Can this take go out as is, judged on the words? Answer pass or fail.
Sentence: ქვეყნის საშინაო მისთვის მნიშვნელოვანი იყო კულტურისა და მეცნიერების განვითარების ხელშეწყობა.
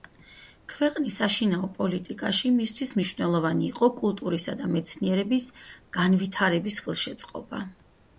fail